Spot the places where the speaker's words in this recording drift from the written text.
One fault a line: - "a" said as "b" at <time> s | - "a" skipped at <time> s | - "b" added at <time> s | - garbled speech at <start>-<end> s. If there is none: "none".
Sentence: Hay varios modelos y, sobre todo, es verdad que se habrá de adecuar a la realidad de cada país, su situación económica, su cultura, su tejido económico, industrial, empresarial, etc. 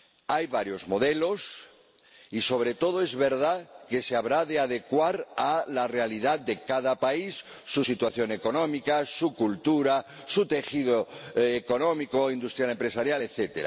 none